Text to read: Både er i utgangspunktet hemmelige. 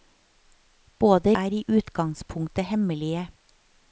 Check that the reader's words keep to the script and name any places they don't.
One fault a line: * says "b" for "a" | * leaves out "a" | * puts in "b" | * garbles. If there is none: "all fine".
all fine